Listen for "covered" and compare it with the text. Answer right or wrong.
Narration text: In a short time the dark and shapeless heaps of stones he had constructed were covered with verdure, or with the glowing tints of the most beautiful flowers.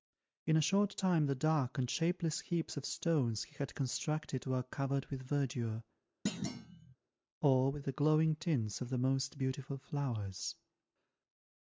right